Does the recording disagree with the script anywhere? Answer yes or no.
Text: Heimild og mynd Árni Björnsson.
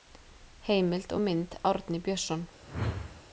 no